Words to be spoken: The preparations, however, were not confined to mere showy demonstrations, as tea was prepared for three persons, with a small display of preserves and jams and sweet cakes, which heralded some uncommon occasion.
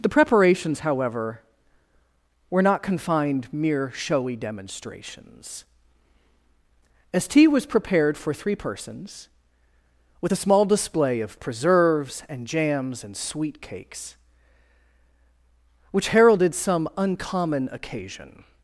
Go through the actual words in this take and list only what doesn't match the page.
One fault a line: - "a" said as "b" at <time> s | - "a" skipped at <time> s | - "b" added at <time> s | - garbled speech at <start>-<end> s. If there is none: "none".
- "to" skipped at 3.5 s